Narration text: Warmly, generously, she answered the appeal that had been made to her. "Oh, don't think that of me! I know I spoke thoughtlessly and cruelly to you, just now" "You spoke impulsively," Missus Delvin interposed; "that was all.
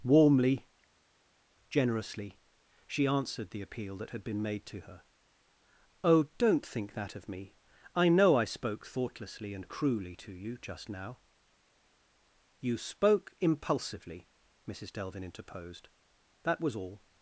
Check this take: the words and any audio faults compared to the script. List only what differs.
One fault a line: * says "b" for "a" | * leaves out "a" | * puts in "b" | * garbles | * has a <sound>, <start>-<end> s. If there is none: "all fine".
all fine